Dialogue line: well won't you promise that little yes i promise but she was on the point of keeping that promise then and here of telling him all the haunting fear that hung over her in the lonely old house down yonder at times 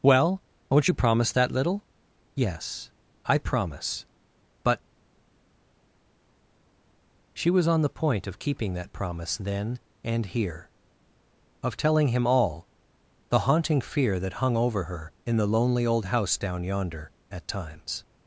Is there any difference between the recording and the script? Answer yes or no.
no